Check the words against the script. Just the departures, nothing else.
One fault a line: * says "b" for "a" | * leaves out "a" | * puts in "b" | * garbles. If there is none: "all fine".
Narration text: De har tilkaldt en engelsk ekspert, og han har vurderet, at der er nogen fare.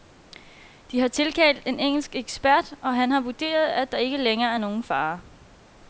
* puts in "ikke længere"